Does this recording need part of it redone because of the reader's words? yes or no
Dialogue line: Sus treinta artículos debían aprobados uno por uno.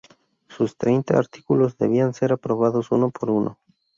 yes